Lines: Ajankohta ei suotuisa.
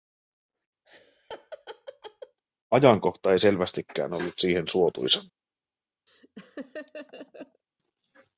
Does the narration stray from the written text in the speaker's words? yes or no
yes